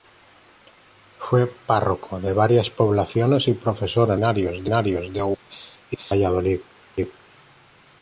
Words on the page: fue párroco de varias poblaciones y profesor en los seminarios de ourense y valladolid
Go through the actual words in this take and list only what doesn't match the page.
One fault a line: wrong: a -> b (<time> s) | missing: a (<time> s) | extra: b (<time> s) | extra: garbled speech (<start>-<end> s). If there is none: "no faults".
no faults